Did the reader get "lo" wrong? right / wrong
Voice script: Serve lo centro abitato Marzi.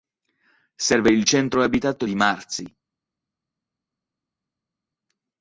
wrong